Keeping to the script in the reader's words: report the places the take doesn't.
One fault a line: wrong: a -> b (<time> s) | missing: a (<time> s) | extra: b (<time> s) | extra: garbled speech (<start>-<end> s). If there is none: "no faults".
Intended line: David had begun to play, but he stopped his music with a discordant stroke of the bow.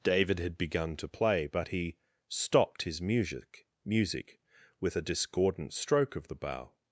extra: music (3.9 s)